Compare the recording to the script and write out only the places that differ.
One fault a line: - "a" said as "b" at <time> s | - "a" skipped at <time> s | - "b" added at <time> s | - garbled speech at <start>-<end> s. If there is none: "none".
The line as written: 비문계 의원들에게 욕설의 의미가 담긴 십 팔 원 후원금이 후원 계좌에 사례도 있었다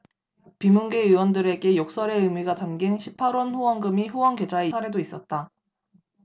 none